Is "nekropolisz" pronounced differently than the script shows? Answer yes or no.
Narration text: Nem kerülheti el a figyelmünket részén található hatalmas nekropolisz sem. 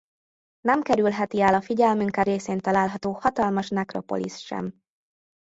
no